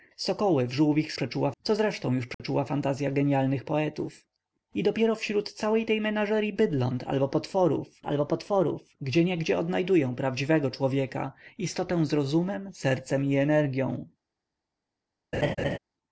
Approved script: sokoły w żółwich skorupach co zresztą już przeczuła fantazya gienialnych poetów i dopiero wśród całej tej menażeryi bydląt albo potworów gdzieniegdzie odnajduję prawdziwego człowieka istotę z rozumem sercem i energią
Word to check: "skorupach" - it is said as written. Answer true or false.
false